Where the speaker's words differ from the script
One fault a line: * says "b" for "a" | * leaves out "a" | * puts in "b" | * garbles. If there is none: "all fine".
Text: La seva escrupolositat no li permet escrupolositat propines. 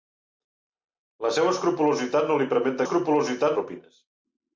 all fine